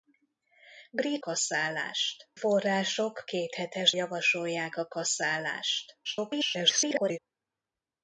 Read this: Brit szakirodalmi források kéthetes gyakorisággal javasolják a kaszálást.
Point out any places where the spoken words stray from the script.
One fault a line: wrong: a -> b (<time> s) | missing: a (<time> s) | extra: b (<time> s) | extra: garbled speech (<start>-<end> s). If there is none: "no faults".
wrong: szakirodalmi -> kaszálást (1.2 s)
missing: gyakorisággal (3.9 s)
extra: garbled speech (6.0-7.2 s)